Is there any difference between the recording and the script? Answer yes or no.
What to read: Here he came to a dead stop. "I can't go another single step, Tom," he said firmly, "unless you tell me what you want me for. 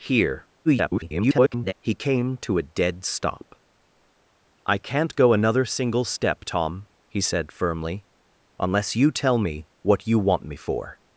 yes